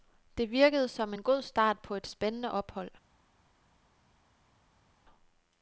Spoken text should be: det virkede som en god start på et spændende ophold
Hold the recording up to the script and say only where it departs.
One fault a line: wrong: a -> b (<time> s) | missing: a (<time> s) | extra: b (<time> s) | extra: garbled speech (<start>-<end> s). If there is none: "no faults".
no faults